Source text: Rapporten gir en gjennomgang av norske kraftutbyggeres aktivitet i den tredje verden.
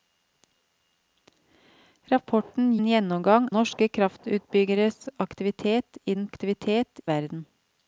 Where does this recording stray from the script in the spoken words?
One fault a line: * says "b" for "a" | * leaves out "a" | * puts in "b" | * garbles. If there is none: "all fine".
* leaves out "gir"
* leaves out "av"
* says "aktivitet" for "tredje"